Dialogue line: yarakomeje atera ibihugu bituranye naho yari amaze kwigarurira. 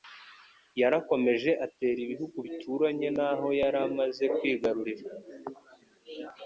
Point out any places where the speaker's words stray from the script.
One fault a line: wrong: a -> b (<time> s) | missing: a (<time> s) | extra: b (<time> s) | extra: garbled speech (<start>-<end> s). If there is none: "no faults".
no faults